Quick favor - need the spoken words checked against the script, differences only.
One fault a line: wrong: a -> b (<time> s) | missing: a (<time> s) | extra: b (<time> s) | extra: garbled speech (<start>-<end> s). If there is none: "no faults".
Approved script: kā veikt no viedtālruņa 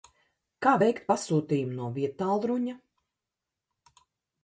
extra: pasūtījumu (1.1 s)